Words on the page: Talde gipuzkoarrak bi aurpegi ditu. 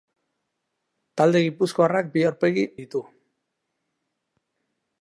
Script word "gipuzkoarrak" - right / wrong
right